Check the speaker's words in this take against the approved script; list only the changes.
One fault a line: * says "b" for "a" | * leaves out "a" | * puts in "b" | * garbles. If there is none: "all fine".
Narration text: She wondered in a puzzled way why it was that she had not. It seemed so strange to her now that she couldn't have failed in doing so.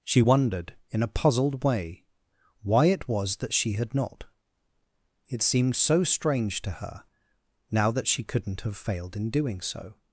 all fine